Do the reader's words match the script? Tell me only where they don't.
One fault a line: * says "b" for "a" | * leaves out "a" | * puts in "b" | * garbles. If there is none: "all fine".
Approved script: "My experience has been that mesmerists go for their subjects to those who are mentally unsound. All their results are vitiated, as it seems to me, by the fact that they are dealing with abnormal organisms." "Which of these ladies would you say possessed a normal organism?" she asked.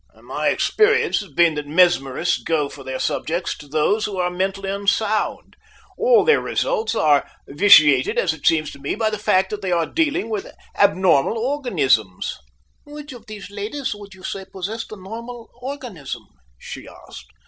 all fine